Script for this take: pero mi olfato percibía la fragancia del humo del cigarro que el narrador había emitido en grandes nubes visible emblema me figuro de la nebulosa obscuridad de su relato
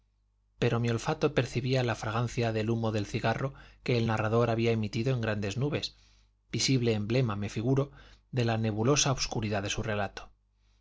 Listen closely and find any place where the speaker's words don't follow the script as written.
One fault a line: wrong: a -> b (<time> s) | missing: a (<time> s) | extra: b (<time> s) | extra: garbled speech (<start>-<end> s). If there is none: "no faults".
no faults